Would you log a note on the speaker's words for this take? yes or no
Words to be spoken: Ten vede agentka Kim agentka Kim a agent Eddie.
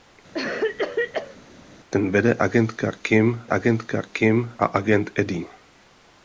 no